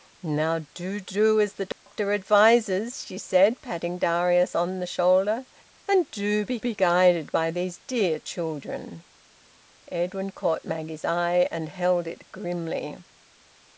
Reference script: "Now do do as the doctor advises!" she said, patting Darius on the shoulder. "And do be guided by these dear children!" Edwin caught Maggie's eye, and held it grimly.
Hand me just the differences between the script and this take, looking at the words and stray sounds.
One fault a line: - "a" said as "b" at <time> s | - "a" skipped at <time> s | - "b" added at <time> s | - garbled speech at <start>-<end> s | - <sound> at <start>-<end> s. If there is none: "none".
- dropout at 1.7-1.9 s
- "be" added at 6.6 s